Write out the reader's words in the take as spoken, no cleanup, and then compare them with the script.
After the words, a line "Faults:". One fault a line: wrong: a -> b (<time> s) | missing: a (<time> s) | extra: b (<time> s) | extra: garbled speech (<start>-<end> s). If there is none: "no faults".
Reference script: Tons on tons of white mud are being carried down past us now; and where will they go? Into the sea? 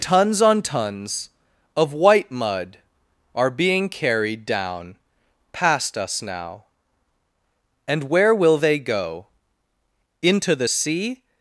Tons on tons of white mud are being carried down past us now; and where will they go? Into the sea?
Faults:
no faults